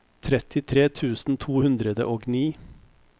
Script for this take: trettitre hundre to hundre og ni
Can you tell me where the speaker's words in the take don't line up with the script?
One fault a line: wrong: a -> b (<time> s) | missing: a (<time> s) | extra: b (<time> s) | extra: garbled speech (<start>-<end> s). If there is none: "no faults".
wrong: hundre -> tusen (0.9 s)